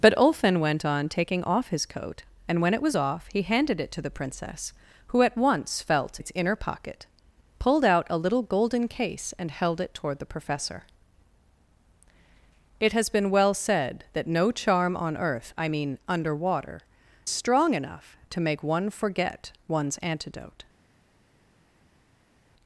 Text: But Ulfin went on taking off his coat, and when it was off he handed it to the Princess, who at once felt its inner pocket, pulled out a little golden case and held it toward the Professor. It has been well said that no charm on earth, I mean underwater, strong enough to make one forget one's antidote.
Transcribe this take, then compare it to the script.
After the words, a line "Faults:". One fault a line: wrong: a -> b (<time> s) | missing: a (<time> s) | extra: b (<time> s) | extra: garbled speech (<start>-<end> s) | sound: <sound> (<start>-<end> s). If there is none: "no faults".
But Ulfin went on taking off his coat, and when it was off he handed it to the Princess, who at once felt its inner pocket, pulled out a little golden case and held it toward the Professor. It has been well said that no charm on earth, I mean underwater, strong enough to make one forget one's antidote.
Faults:
no faults